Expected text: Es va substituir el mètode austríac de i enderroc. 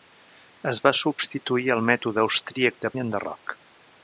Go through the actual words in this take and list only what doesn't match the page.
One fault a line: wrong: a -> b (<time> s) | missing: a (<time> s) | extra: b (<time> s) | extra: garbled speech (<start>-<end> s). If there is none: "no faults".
no faults